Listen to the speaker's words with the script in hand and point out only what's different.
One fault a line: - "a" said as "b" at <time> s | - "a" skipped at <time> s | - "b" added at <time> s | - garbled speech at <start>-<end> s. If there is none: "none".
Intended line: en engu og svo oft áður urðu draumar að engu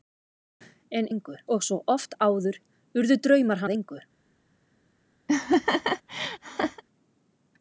none